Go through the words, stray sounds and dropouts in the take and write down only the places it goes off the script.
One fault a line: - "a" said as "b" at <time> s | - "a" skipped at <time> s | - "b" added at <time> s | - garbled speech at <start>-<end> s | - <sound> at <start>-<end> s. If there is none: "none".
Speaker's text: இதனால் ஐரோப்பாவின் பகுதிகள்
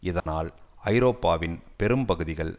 - dropout at 0.2-0.3 s
- "பெரும்" added at 1.8 s